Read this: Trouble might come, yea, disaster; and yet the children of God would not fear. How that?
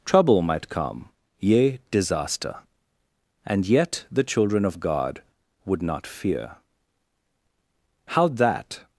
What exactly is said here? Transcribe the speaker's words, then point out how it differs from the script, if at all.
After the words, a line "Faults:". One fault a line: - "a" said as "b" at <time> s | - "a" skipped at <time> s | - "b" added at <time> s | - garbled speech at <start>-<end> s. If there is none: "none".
Trouble might come, yea, disaster; and yet the children of God would not fear. How that?
Faults:
none